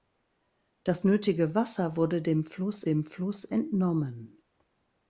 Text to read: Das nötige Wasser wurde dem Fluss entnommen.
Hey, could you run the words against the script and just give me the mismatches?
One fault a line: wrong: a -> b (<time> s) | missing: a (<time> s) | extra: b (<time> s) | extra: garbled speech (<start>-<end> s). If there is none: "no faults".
extra: dem Fluss (2.8 s)